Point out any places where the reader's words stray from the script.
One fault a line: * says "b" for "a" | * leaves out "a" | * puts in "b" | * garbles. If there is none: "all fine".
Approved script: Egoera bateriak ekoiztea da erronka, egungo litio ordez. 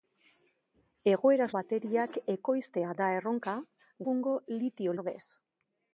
all fine